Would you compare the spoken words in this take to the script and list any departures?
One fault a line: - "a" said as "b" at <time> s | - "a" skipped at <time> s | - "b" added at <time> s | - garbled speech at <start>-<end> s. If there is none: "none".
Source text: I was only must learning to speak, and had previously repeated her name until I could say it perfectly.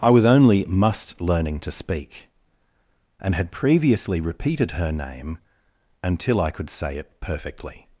none